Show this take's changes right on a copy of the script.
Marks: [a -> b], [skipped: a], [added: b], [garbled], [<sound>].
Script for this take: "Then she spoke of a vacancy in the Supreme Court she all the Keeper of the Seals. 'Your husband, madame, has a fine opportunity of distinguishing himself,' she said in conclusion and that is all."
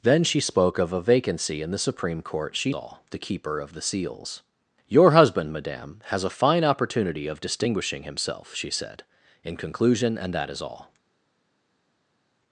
"Then she spoke of a vacancy in the Supreme Court she all the Keeper of the Seals. 'Your husband, madame, has a fine opportunity of distinguishing himself,' she said in conclusion and that is all."